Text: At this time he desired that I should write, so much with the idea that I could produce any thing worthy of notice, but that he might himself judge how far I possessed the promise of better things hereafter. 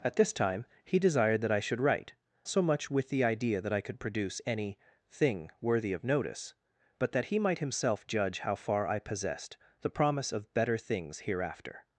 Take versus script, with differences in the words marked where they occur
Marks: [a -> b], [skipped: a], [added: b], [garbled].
At this time he desired that I should write, so much with the idea that I could produce any thing worthy of notice, but that he might himself judge how far I possessed the promise of better things hereafter.